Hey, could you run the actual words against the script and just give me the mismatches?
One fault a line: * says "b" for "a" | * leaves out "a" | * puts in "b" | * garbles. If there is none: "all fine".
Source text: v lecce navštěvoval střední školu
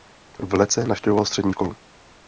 all fine